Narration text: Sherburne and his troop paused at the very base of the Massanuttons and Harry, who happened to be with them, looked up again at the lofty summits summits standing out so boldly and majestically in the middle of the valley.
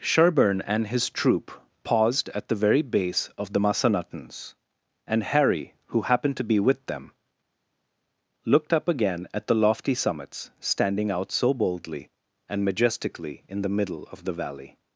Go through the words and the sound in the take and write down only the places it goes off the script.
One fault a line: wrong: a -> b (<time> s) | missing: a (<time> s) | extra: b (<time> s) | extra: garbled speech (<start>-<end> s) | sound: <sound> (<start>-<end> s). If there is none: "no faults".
missing: summits (10.5 s)